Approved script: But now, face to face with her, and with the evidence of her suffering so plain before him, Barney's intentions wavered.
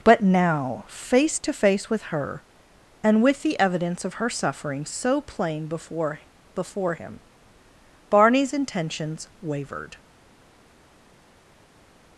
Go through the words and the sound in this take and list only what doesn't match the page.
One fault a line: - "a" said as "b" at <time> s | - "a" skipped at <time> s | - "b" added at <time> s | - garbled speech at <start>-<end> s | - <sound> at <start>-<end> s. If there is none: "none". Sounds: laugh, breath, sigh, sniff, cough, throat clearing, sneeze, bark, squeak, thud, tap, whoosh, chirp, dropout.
- "before" added at 6.5 s